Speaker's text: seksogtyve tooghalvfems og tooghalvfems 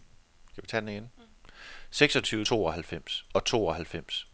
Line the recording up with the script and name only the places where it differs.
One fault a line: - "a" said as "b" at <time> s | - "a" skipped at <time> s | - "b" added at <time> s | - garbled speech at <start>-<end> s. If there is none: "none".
none